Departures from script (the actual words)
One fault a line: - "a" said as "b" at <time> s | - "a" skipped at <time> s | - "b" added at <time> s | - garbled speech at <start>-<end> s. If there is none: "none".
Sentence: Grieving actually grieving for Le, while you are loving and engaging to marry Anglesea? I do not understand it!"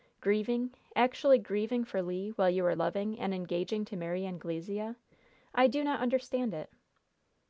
none